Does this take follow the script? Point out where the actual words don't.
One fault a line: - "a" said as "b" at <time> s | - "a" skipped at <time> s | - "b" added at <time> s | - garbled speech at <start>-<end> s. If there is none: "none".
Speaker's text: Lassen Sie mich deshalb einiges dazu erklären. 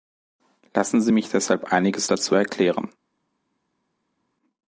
none